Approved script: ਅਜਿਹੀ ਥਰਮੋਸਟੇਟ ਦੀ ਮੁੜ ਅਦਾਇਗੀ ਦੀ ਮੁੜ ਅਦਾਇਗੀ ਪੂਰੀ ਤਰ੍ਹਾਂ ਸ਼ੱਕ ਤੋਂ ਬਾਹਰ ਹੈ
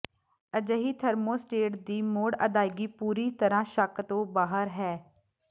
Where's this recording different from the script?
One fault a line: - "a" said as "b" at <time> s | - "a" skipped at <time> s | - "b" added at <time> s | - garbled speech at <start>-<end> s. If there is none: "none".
- "ਦੀ ਮੁੜ ਅਦਾਇਗੀ" skipped at 2.9 s